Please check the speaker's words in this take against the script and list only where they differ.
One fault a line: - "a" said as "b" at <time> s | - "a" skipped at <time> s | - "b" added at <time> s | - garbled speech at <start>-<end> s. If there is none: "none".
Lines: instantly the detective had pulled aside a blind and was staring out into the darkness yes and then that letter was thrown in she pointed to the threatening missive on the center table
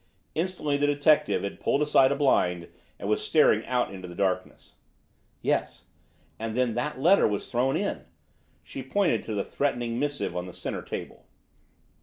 none